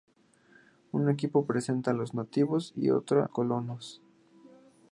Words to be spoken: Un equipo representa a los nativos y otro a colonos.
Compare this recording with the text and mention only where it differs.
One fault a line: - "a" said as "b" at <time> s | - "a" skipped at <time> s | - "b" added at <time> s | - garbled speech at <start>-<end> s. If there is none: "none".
none